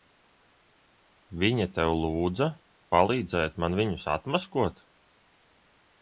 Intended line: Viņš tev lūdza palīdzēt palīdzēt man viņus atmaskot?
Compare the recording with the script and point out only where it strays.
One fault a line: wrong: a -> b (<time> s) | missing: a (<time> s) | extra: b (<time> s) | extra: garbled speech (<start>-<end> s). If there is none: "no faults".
wrong: Viņš -> Viņa (1.4 s)
missing: palīdzēt (3.6 s)